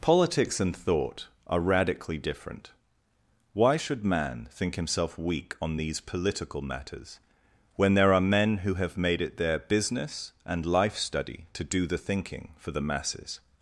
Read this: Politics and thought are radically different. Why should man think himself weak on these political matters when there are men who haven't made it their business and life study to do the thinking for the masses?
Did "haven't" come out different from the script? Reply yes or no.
yes